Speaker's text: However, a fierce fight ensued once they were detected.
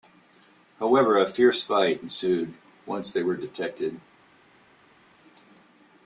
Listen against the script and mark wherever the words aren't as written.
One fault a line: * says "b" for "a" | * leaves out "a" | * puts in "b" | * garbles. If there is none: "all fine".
all fine